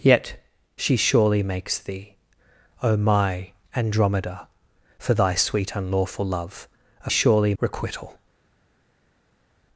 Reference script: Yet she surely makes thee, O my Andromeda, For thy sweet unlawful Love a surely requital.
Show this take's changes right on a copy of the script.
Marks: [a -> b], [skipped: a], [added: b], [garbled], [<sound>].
Yet she surely makes thee, O my Andromeda, For thy sweet unlawful Love a surely requital.